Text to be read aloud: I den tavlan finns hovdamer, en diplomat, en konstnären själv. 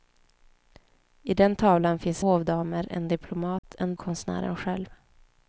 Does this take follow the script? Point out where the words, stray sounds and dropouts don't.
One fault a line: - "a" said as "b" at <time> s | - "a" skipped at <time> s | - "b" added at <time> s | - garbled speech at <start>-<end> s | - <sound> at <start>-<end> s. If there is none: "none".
- dropout at 3.6-3.6 s